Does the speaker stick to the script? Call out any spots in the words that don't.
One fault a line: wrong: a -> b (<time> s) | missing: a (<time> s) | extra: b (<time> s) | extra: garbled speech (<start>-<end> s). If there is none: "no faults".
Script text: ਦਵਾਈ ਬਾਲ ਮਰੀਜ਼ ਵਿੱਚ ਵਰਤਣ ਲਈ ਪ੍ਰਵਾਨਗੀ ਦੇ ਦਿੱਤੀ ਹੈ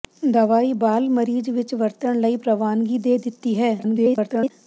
extra: garbled speech (3.8-4.5 s)